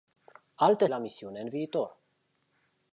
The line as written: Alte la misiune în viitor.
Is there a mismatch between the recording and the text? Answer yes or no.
no